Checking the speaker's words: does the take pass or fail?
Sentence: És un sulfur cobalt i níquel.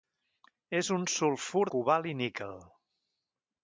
pass